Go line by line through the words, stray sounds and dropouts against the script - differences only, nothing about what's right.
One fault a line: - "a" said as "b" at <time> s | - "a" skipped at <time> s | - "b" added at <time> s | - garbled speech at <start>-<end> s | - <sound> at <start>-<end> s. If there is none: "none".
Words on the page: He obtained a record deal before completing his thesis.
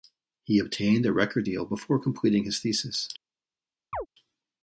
- chirp at 3.9-4.1 s